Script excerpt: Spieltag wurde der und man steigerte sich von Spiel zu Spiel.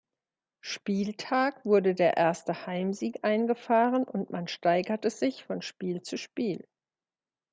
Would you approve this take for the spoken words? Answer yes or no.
no